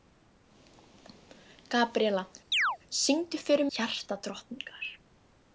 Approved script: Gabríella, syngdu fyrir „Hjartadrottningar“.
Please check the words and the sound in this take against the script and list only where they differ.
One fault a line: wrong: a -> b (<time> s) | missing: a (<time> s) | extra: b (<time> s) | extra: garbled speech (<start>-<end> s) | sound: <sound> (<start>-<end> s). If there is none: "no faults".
sound: chirp (2.5-2.8 s)